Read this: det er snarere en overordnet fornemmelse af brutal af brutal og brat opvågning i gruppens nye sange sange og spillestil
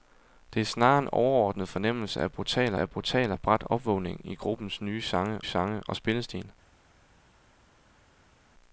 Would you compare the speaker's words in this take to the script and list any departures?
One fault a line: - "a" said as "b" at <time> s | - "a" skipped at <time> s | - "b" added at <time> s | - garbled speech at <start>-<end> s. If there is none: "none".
none